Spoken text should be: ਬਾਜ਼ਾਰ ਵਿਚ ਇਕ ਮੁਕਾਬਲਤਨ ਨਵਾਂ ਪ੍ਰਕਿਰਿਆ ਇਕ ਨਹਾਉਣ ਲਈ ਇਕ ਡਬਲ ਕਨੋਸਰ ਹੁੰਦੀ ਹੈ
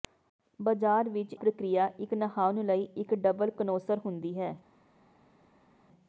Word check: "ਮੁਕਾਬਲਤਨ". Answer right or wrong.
wrong